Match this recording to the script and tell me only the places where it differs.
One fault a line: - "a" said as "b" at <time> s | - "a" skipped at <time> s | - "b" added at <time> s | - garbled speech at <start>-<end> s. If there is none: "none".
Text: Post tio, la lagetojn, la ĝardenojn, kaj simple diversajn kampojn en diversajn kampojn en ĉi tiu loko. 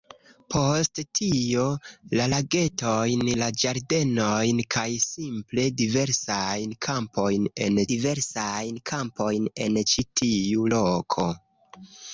none